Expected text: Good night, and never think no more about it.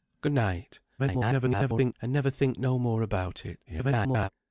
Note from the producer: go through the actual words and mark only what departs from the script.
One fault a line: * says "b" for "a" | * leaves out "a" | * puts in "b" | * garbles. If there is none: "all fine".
* garbles
* garbles